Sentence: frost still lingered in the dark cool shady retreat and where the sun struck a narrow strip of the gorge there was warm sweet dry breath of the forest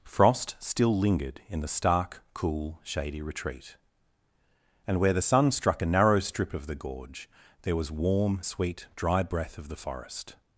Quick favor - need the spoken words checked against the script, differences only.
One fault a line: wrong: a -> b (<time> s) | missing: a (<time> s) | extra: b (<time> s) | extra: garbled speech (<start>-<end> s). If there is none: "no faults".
wrong: dark -> stark (1.7 s)